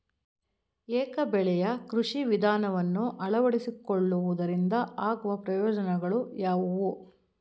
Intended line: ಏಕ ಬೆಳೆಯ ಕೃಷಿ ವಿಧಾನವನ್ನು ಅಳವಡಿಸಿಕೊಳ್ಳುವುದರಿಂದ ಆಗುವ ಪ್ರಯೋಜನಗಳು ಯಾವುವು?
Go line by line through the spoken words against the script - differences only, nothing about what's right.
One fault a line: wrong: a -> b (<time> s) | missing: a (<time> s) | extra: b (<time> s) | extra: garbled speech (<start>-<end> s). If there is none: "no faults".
no faults